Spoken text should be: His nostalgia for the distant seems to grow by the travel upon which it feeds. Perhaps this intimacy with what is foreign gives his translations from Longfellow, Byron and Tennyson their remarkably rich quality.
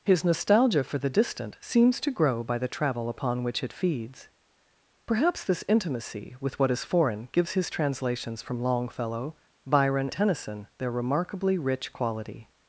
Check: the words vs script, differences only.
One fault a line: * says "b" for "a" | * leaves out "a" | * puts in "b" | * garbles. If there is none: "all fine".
* leaves out "and"